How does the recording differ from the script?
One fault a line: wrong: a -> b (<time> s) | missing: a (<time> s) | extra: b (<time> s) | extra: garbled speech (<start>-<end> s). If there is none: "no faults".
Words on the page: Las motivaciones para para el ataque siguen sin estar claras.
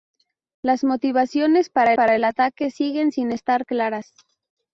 no faults